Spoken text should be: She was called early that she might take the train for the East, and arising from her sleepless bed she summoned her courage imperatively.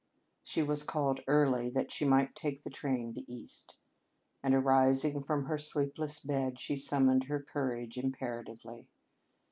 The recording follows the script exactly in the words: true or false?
false